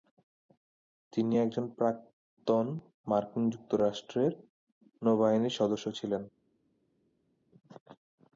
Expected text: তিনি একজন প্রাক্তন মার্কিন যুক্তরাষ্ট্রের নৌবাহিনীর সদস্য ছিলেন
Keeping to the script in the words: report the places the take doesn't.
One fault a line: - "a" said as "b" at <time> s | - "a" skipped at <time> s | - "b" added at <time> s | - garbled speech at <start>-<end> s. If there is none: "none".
none